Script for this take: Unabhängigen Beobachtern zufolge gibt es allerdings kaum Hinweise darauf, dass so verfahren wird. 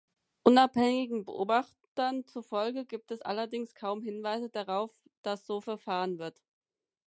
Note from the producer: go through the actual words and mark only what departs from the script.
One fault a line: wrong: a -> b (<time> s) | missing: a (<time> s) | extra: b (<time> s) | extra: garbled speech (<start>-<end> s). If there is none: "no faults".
no faults